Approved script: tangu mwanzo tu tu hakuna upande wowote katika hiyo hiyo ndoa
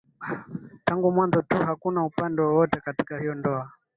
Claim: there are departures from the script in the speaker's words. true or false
true